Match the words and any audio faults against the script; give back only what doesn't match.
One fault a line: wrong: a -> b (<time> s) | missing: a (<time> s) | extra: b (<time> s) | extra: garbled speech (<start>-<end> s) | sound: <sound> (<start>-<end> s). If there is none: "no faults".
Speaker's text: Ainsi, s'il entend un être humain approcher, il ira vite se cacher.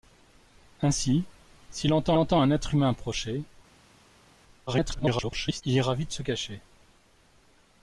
extra: entend (2.2 s)
extra: garbled speech (4.7-5.6 s)